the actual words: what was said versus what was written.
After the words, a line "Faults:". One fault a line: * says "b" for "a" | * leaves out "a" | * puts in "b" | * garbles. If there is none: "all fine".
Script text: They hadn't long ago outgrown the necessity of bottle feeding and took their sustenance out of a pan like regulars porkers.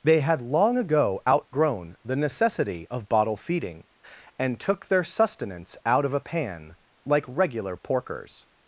They had long ago outgrown the necessity of bottle feeding and took their sustenance out of a pan like regular porkers.
Faults:
* says "had" for "hadn't"
* says "regular" for "regulars"